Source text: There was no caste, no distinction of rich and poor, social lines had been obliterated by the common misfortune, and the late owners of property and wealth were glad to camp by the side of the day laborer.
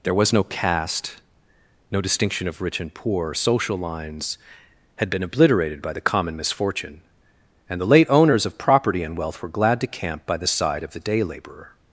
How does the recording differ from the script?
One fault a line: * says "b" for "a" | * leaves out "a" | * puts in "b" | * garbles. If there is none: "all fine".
all fine